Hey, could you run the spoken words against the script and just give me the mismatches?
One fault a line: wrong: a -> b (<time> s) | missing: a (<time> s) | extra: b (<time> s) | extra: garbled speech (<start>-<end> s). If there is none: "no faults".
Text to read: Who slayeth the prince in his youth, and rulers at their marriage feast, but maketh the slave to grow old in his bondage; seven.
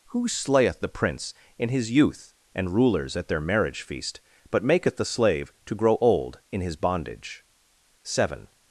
no faults